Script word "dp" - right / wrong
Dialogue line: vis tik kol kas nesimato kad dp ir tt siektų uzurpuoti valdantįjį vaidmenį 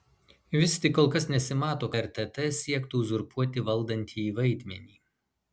wrong